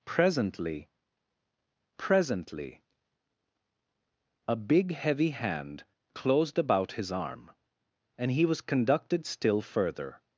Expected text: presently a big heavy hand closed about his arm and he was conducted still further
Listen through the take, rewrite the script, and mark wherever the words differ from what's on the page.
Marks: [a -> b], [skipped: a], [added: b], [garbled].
presently [added: presently] a big heavy hand closed about his arm and he was conducted still further